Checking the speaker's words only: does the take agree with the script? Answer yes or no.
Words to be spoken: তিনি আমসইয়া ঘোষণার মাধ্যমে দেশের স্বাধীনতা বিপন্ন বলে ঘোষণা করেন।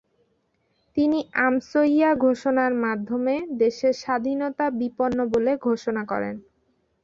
yes